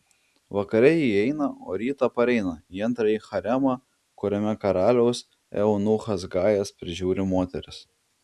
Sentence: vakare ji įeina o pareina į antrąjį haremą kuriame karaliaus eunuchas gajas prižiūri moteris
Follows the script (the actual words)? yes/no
no